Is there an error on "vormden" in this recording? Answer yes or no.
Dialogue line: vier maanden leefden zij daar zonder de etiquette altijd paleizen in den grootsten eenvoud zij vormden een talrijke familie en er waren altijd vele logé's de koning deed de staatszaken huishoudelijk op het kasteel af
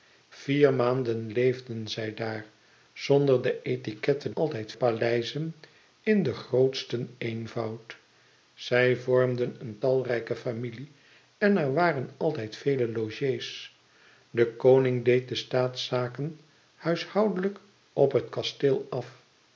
no